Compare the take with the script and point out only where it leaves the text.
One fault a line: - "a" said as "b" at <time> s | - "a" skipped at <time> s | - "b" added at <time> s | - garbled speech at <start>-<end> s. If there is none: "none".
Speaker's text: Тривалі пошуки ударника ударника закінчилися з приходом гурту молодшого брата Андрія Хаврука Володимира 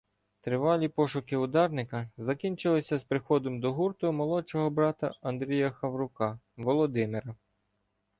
- "ударника" skipped at 2.1 s
- "до" added at 3.6 s